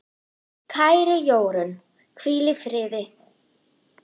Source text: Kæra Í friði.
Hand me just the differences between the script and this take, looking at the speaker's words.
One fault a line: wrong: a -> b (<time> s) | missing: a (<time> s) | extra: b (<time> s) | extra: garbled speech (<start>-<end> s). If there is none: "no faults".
extra: Jórunn hvíl (1.3 s)